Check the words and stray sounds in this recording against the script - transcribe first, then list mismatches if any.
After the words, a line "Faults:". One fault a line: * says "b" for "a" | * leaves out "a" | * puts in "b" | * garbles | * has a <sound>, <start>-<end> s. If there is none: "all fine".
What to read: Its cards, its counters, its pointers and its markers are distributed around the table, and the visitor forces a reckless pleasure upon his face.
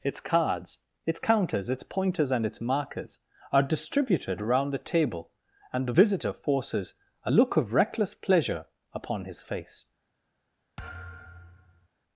Its cards, its counters, its pointers and its markers are distributed around the table, and the visitor forces a look of reckless pleasure upon his face.
Faults:
* puts in "look of"
* has a thud, 10.8-11.9 s